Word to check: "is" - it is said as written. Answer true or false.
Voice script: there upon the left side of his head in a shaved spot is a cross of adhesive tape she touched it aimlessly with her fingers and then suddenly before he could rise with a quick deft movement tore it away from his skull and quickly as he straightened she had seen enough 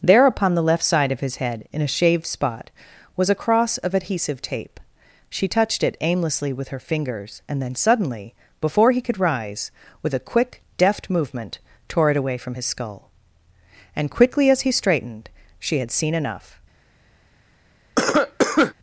false